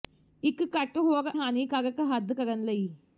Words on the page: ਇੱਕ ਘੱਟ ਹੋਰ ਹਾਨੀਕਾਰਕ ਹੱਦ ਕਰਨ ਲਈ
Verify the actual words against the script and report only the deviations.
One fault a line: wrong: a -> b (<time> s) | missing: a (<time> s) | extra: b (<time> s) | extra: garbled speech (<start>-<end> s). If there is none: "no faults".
no faults